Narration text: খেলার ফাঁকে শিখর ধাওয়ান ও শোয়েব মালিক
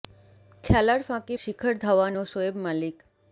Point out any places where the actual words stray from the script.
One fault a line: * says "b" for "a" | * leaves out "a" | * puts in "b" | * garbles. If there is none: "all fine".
all fine